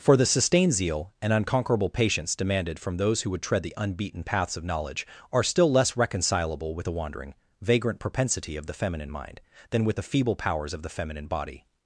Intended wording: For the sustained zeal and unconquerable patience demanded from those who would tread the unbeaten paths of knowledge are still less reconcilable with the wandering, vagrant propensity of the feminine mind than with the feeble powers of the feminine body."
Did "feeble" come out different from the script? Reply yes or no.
no